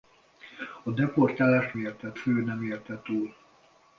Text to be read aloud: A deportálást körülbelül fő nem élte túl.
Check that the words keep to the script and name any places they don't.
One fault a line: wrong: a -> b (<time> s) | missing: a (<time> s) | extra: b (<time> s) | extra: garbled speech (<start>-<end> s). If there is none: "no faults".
wrong: körülbelül -> élte (1.8 s)